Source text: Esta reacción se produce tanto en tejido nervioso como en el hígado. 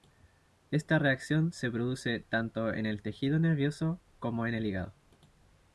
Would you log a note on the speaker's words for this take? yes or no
yes